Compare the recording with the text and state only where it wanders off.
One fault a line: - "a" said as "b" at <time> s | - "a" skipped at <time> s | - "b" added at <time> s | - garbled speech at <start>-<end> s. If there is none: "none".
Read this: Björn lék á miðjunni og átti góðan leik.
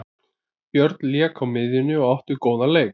none